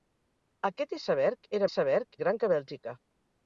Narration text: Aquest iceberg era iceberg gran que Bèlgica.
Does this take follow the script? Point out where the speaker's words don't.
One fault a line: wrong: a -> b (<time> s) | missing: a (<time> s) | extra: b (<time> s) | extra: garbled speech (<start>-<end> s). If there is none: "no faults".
no faults